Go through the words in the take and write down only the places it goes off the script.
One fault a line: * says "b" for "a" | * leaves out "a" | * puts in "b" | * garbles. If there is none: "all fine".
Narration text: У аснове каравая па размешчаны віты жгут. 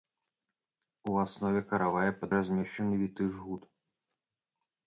all fine